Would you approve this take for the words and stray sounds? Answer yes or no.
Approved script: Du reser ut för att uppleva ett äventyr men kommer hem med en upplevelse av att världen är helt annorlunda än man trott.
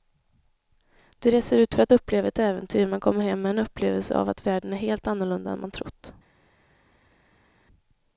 yes